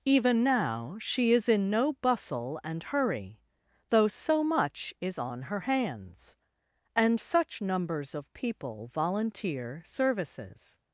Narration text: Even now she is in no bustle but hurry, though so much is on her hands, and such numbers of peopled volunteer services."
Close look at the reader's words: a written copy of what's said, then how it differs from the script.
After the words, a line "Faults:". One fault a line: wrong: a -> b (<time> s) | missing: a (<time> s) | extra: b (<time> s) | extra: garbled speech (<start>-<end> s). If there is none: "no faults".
Even now she is in no bustle and hurry, though so much is on her hands, and such numbers of people volunteer services."
Faults:
wrong: but -> and (2.6 s)
wrong: peopled -> people (8.3 s)